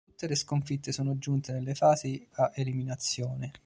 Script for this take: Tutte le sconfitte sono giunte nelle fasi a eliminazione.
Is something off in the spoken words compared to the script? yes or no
no